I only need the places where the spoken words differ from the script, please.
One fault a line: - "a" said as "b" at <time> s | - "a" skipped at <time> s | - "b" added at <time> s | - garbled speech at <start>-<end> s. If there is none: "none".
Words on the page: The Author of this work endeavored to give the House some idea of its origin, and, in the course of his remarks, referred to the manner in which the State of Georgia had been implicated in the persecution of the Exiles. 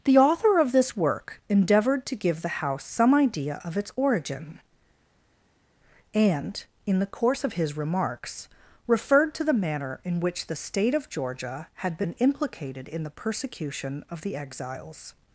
none